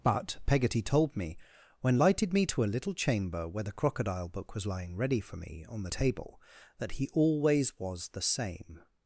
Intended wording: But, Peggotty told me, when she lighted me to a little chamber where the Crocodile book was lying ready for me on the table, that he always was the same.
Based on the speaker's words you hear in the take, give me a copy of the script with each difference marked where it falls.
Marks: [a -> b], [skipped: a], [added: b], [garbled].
But, Peggotty told me, when [skipped: she] lighted me to a little chamber where the Crocodile book was lying ready for me on the table, that he always was the same.